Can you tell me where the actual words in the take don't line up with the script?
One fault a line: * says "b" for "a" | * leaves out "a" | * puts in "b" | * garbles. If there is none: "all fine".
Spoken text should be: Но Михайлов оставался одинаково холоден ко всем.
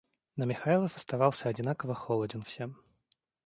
* leaves out "ко"